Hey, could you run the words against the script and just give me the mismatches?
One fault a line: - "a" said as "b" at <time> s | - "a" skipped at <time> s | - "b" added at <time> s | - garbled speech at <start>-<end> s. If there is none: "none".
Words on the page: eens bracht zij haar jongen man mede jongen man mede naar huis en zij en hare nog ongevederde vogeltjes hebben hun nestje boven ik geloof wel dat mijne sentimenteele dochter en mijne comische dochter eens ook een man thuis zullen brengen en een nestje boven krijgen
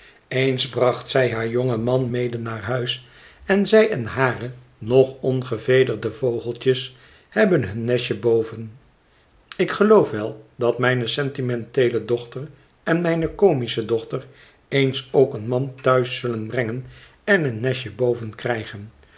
- "jongen man mede" skipped at 2.4 s